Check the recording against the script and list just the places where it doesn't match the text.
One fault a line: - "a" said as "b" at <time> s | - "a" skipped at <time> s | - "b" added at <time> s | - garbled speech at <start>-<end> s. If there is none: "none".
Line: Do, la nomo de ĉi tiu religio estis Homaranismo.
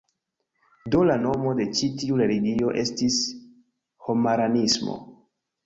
none